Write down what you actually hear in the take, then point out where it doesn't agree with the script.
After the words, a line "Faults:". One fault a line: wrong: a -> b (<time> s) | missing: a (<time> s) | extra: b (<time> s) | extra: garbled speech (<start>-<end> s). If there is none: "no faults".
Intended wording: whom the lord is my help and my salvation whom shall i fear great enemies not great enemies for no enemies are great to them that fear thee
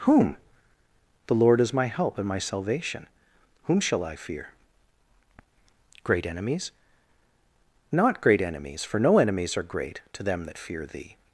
whom the lord is my help and my salvation whom shall i fear great enemies not great enemies for no enemies are great to them that fear thee
Faults:
no faults